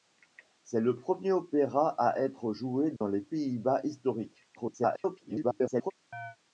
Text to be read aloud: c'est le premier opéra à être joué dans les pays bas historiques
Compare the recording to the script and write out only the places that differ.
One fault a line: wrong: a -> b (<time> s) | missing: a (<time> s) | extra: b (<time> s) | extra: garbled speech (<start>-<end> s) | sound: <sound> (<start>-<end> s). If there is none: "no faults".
sound: dropout (3.0-3.0 s)
extra: garbled speech (4.5-5.9 s)
sound: chirp (6.1-6.4 s)